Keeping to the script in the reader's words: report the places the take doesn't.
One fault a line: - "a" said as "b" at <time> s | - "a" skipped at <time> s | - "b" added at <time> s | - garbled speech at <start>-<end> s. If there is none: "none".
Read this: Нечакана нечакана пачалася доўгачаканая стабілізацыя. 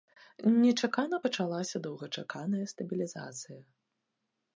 - "нечакана" skipped at 1.2 s